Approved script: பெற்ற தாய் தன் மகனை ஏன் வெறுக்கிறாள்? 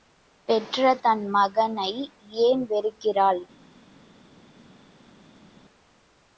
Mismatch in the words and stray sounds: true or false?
true